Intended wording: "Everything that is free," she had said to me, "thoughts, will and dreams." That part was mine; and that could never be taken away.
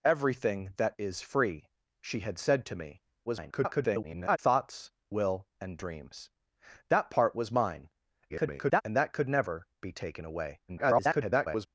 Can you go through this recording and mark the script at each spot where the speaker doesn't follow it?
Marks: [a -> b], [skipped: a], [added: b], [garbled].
"Everything that is free," she had said to me, [garbled] "thoughts, will and dreams." That part was mine; [garbled] and that could never be taken away. [garbled]